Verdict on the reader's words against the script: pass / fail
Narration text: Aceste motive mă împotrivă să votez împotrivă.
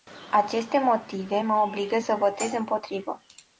fail